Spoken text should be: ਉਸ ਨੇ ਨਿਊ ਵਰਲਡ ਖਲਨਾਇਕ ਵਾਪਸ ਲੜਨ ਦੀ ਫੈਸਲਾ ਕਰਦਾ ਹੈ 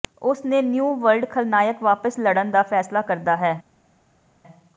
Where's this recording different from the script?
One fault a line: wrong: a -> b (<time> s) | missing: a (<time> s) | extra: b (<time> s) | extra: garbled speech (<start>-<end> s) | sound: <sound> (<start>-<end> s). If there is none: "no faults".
wrong: ਦੀ -> ਦਾ (2.5 s)